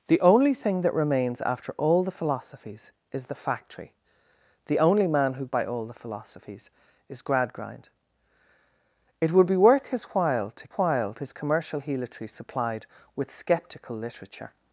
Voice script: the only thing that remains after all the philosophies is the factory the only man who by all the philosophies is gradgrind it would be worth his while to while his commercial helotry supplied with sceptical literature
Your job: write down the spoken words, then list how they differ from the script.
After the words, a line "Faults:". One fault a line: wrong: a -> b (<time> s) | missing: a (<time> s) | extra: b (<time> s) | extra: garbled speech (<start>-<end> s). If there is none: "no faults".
the only thing that remains after all the philosophies is the factory the only man who by all the philosophies is gradgrind it would be worth his while to while his commercial helotry supplied with sceptical literature
Faults:
no faults